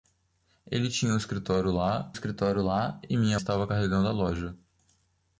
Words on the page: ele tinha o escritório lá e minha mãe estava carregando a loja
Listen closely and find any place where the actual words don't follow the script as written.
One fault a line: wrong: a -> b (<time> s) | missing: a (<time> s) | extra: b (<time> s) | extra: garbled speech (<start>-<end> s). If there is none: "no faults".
extra: escritório lá (2.1 s)
missing: mãe (3.4 s)